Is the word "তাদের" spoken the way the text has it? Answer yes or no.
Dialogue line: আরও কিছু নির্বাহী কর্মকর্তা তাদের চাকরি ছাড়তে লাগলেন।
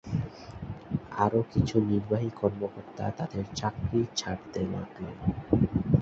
yes